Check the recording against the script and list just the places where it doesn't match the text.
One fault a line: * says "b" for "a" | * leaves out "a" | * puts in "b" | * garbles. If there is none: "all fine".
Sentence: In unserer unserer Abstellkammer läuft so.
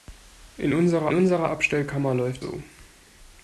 all fine